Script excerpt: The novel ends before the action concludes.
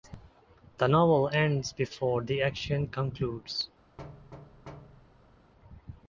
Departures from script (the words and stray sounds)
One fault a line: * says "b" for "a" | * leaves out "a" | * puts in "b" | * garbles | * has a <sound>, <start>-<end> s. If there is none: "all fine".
* has a thud, 4.0-5.5 s